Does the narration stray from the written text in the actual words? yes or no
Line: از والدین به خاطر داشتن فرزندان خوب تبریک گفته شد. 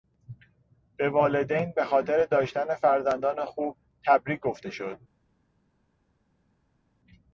yes